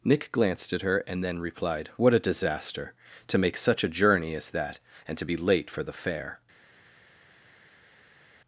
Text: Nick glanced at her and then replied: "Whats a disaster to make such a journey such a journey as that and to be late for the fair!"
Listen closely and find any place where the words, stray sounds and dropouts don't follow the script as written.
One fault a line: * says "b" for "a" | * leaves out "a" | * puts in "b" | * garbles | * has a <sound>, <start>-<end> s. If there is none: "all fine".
* says "What" for "Whats"
* leaves out "such a journey"